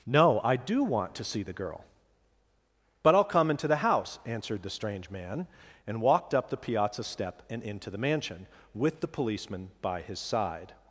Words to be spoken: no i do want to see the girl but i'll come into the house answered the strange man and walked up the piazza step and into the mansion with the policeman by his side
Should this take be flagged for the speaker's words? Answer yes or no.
no